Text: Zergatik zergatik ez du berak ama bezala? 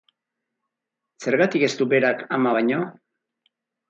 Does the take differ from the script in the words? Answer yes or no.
yes